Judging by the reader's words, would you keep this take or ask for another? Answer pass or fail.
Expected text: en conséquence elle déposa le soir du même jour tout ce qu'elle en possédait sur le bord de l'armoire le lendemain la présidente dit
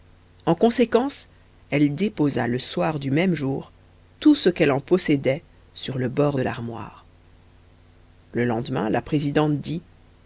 pass